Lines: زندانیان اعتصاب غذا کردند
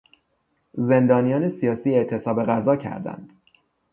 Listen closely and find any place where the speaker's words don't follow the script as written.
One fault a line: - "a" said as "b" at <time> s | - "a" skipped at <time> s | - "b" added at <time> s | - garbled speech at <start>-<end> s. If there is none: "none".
- "سیاسی" added at 1.5 s